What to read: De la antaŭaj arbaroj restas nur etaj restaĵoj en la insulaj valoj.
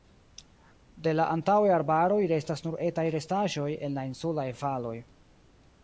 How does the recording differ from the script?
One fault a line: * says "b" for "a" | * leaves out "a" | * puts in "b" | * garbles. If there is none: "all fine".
all fine